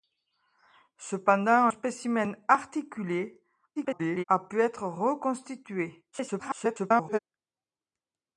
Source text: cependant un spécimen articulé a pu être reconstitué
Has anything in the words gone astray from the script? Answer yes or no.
yes